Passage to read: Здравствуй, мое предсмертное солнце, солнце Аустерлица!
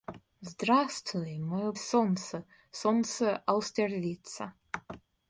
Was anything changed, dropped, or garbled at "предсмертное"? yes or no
yes